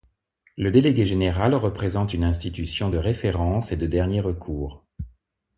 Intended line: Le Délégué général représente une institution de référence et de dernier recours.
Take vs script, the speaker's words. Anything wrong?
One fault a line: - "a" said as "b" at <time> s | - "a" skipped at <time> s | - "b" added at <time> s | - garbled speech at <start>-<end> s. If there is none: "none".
none